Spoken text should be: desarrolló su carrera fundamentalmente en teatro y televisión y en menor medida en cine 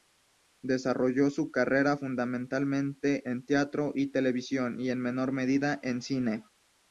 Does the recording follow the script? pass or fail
pass